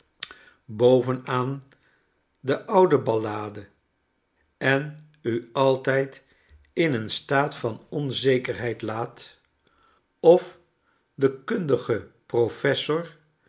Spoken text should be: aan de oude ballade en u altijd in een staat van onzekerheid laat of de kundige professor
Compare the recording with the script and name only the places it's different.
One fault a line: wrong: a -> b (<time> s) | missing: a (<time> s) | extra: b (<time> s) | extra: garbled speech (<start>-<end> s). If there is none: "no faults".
no faults